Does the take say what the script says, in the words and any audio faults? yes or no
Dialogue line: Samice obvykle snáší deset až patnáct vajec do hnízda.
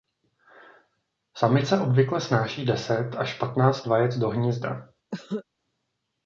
no